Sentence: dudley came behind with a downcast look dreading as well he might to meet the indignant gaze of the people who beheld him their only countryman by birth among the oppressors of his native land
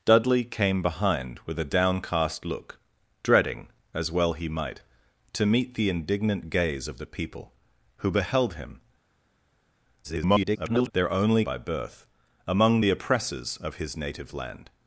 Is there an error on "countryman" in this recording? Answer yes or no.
yes